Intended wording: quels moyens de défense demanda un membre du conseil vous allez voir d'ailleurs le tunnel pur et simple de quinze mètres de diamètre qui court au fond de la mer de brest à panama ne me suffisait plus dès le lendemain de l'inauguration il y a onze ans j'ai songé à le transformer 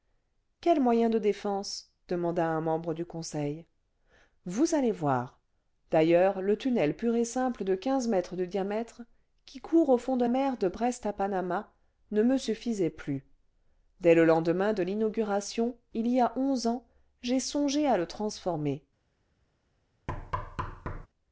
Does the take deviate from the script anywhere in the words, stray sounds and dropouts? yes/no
yes